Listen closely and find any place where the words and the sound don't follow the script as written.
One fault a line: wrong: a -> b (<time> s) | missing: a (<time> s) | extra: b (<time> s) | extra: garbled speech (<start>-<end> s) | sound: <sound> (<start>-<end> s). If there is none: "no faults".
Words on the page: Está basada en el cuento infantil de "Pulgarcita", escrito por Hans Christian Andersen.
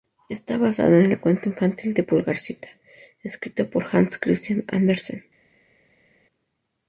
no faults